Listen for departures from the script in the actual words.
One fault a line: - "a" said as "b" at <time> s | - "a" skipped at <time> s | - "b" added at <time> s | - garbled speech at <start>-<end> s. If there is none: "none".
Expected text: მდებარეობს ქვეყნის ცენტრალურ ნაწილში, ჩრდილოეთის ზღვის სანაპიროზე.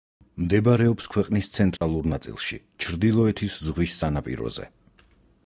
none